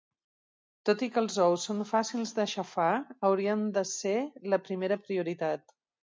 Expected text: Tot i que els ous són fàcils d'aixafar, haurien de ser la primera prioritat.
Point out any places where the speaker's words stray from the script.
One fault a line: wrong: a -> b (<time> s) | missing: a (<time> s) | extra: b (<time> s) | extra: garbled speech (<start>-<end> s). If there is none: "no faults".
no faults